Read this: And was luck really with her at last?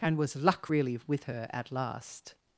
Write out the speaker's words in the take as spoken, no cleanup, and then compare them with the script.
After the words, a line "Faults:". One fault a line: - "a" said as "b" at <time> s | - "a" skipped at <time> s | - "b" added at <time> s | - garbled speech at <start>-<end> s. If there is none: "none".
And was luck really with her at last?
Faults:
none